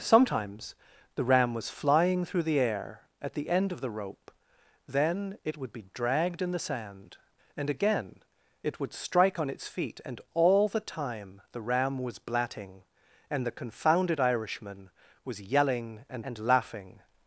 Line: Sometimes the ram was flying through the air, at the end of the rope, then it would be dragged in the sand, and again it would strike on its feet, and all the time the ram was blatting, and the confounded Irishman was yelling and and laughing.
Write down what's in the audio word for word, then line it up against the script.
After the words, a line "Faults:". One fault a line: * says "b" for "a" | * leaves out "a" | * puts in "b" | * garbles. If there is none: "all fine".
Sometimes the ram was flying through the air, at the end of the rope, then it would be dragged in the sand, and again it would strike on its feet, and all the time the ram was blatting, and the confounded Irishman was yelling and and laughing.
Faults:
all fine